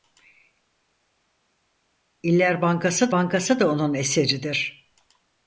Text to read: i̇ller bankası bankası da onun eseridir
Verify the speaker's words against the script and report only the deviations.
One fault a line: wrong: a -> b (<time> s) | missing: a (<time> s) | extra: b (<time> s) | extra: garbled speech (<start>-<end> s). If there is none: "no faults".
no faults